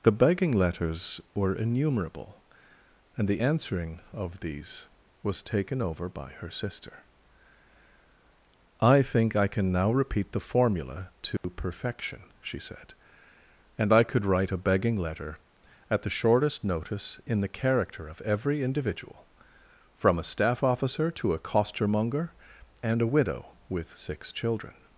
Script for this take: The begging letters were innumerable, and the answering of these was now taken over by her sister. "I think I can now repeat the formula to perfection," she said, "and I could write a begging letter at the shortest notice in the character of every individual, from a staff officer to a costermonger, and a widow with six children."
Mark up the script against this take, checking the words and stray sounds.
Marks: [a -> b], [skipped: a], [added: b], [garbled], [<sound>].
The begging letters were innumerable, and the answering of these was [skipped: now] taken over by her sister. "I think I can now repeat the formula to [dropout] perfection," she said, "and I could write a begging letter at the shortest notice in the character of every individual, from a staff officer to a costermonger, and a widow with six children."